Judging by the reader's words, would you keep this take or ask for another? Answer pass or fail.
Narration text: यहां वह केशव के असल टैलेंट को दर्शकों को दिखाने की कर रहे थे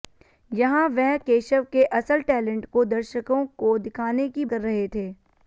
pass